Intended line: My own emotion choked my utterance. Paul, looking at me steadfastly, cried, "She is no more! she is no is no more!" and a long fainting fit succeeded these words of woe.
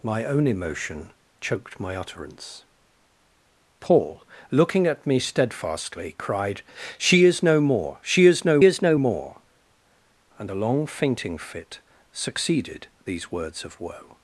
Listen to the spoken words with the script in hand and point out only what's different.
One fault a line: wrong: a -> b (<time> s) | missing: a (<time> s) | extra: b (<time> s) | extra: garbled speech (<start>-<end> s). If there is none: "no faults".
no faults